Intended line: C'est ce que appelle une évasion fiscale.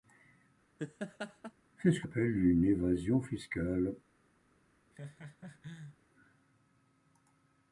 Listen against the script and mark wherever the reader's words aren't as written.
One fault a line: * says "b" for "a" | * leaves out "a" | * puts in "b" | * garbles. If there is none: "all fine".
all fine